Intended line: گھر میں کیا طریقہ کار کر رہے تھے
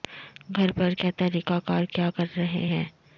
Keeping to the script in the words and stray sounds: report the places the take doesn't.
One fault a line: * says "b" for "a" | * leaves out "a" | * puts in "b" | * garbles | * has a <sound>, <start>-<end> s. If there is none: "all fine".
* says "پر" for "میں"
* puts in "کیا"
* says "ہیں" for "تھے"